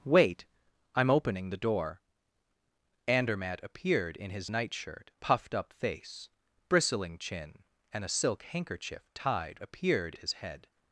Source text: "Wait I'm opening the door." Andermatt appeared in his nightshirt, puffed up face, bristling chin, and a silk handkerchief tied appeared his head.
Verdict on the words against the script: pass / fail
pass